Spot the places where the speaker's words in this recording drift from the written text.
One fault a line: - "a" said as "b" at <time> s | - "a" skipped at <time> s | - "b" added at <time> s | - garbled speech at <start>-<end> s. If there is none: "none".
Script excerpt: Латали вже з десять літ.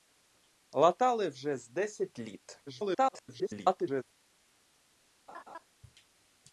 - garbled speech at 2.7-4.0 s